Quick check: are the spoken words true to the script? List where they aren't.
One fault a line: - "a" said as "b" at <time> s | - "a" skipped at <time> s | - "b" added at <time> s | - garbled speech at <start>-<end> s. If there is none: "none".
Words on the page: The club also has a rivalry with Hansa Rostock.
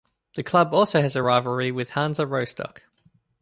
none